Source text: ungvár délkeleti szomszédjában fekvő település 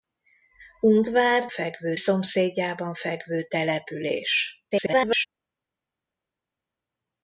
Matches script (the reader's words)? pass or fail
fail